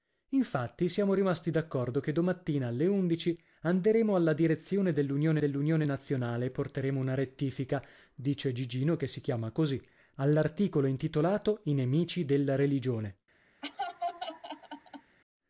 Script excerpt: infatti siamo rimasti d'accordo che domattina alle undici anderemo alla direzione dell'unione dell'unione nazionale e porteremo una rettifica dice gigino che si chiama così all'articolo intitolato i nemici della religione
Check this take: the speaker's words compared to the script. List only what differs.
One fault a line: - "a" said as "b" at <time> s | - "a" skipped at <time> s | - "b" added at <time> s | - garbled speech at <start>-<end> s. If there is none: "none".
none